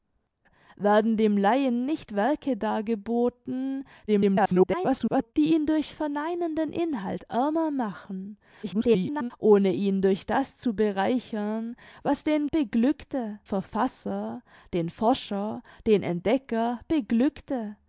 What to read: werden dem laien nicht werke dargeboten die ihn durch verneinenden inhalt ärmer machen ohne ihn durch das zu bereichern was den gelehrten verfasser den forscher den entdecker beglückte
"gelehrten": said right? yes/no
no